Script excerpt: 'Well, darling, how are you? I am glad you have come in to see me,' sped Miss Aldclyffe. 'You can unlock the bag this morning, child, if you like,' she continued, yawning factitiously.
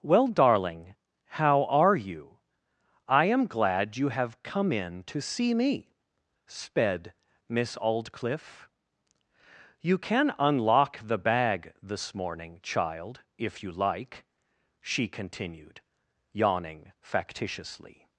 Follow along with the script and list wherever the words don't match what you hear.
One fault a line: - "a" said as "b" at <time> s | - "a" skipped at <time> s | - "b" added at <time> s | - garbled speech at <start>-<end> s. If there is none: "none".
none